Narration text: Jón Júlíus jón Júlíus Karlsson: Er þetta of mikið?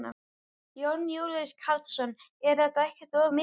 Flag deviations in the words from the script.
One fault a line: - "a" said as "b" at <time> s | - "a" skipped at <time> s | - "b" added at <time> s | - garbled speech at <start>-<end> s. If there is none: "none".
- "jón Júlíus" skipped at 1.5 s
- "ekkert" added at 2.9 s